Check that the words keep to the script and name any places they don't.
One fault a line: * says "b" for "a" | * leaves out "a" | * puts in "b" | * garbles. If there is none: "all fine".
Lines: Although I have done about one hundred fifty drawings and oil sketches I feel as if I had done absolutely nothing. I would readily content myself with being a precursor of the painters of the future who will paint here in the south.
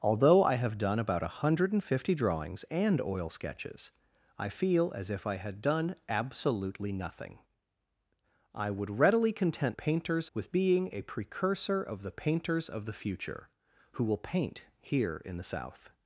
* says "painters" for "myself"